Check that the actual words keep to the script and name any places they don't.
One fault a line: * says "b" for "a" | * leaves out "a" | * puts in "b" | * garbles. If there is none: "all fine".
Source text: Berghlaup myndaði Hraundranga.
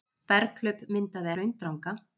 all fine